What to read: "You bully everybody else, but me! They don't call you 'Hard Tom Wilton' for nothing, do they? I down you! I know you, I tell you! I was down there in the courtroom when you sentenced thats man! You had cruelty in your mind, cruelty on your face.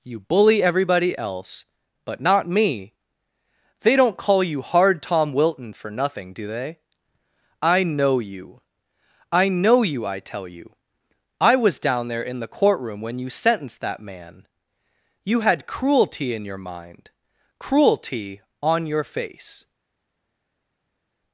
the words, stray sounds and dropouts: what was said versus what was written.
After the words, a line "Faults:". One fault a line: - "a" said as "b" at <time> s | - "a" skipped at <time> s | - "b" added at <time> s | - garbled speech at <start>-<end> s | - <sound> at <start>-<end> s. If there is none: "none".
"You bully everybody else, but not me! They don't call you 'Hard Tom Wilton' for nothing, do they? I know you! I know you, I tell you! I was down there in the courtroom when you sentenced that man! You had cruelty in your mind, cruelty on your face.
Faults:
- "not" added at 2.2 s
- "down" said as "know" at 7.8 s
- "thats" said as "that" at 13.8 s